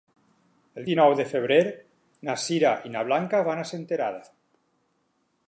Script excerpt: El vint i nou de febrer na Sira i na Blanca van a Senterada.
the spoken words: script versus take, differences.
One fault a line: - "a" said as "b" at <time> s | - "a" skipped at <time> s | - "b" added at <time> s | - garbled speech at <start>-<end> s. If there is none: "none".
- "vint" skipped at 0.9 s